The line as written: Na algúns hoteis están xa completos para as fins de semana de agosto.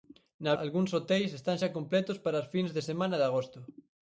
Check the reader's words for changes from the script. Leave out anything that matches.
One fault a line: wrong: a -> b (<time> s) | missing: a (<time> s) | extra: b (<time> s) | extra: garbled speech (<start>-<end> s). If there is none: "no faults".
no faults